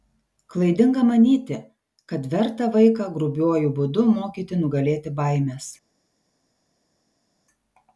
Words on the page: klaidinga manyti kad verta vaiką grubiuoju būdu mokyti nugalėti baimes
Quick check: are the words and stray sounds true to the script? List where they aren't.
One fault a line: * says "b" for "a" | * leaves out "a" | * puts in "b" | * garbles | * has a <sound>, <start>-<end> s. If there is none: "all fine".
all fine